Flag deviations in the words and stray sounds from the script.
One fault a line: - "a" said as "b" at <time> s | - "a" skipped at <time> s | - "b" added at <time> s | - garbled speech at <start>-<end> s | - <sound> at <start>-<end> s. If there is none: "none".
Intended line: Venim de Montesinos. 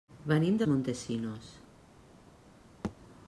- thud at 2.8-3.0 s